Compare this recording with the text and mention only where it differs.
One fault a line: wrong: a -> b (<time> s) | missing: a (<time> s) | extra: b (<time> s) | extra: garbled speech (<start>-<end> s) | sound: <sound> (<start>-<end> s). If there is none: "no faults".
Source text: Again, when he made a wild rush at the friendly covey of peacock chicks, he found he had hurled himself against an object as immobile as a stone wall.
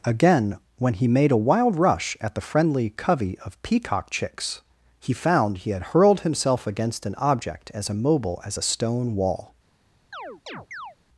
sound: chirp (10.1-11.0 s)